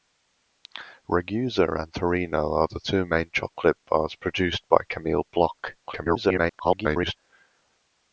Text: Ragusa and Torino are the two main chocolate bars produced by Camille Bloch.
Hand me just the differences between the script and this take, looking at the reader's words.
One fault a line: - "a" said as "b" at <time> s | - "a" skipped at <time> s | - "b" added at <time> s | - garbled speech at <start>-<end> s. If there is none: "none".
- garbled speech at 5.8-7.2 s